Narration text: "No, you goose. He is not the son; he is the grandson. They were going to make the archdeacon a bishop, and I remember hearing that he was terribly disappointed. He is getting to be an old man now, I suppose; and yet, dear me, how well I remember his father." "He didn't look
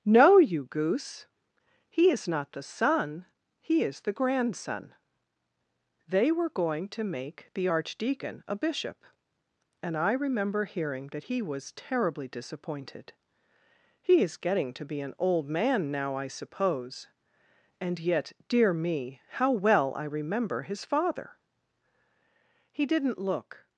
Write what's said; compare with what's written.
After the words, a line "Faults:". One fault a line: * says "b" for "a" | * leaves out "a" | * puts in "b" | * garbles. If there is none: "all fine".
"No, you goose. He is not the son; he is the grandson. They were going to make the archdeacon a bishop, and I remember hearing that he was terribly disappointed. He is getting to be an old man now, I suppose; and yet, dear me, how well I remember his father." "He didn't look
Faults:
all fine